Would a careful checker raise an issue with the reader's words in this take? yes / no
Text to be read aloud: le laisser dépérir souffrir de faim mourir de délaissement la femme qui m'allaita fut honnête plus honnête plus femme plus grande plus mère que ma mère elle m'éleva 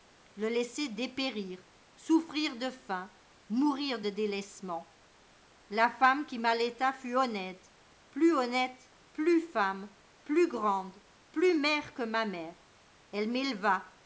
no